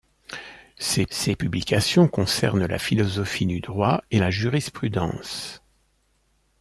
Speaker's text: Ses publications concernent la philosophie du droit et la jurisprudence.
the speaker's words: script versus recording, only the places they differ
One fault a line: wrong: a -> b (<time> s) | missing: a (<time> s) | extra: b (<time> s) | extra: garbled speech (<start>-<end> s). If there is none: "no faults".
extra: ses (1.1 s)